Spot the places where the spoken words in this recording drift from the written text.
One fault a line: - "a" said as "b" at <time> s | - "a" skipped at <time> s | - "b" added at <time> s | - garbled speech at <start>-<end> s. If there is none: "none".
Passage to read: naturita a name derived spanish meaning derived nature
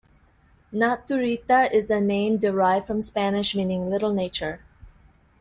- "is" added at 1.7 s
- "from" added at 2.9 s
- "derived" said as "little" at 3.9 s